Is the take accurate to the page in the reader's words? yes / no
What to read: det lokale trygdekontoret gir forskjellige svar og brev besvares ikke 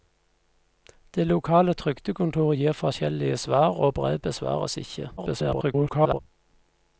no